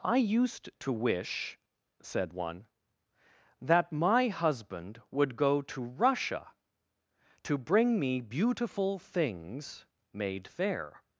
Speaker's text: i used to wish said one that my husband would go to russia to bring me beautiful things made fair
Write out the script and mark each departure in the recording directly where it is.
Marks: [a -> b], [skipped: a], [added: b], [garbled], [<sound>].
i used to wish said one that my husband would go to russia to bring me beautiful things made fair